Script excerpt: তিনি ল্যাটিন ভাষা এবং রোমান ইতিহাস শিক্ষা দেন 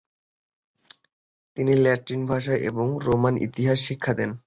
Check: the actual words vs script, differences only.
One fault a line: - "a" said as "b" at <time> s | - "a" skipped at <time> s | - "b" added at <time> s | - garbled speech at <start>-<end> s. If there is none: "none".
none